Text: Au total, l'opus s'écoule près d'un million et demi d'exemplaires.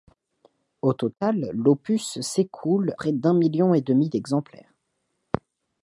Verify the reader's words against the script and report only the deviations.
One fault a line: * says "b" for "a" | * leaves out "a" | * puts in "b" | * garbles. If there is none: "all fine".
all fine